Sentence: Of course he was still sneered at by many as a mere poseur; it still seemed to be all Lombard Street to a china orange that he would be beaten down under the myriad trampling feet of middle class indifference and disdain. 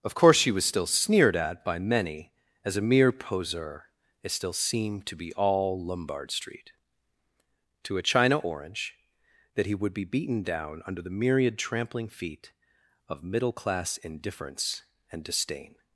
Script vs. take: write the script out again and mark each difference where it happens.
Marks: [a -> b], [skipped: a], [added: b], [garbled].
Of course [he -> she] was still sneered at by many as a mere poseur; it still seemed to be all Lombard Street to a china orange that he would be beaten down under the myriad trampling feet of middle class indifference and disdain.